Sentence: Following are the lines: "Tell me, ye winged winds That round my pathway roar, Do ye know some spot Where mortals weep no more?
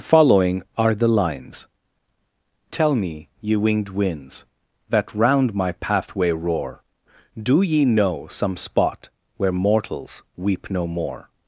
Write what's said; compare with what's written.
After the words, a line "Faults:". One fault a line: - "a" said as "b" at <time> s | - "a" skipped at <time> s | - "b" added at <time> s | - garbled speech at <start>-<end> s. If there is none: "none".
Following are the lines: "Tell me, ye winged winds That round my pathway roar, Do ye know some spot Where mortals weep no more?
Faults:
none